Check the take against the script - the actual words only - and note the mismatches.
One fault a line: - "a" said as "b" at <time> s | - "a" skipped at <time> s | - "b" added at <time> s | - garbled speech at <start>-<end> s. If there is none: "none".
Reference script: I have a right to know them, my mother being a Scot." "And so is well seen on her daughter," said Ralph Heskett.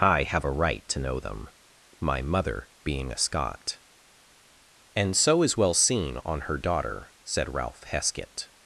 none